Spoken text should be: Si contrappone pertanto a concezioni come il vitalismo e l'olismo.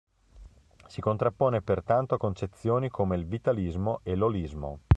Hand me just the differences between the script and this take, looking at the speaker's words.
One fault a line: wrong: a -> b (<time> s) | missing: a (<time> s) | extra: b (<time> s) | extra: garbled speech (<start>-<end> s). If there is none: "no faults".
no faults